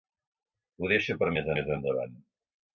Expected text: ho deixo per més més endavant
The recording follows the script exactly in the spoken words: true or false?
true